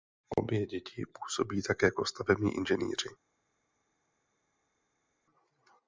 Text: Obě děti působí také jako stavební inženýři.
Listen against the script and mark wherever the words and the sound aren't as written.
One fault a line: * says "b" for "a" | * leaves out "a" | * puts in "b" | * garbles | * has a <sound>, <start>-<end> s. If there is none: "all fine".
all fine